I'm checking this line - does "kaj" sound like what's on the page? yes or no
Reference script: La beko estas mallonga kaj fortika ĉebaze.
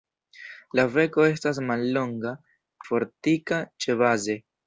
no